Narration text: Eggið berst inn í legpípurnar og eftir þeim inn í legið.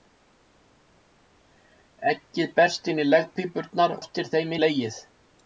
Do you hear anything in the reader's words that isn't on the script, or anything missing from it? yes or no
yes